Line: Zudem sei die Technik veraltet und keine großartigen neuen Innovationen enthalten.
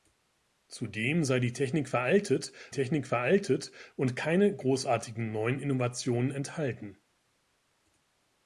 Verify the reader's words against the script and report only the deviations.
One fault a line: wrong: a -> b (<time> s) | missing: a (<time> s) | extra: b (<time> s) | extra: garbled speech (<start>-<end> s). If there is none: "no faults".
extra: Technik veraltet (2.7 s)